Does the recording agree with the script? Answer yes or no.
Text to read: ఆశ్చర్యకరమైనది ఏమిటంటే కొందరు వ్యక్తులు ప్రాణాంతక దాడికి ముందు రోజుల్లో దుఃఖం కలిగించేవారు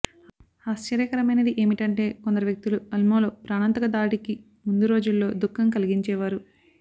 no